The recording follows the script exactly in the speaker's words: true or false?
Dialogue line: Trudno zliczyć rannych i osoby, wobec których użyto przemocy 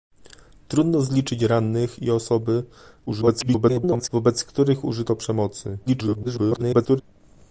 false